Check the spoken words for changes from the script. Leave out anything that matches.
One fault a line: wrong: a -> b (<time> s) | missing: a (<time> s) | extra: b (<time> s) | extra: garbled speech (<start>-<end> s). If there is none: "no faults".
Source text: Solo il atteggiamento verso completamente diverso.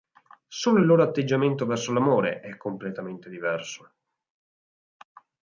extra: loro (0.8 s)
extra: l'amore è (1.9 s)